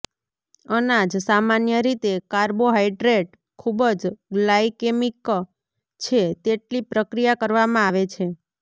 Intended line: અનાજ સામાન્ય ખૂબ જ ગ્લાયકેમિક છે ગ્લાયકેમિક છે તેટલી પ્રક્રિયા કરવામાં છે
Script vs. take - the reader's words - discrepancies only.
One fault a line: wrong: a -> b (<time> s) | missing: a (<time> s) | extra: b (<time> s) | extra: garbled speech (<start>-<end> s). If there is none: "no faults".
extra: રીતે કાર્બોહાઈડ્રેટ (1.9 s)
missing: ગ્લાયકેમિક છે (6.2 s)
extra: આવે (7.8 s)